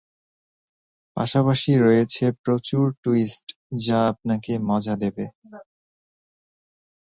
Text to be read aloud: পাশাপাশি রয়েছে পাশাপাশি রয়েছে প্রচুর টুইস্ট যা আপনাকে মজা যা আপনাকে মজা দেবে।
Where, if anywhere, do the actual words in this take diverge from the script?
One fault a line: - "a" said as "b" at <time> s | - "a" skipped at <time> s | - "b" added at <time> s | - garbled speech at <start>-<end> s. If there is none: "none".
- "পাশাপাশি রয়েছে" skipped at 2.2 s
- "যা আপনাকে মজা" skipped at 5.0 s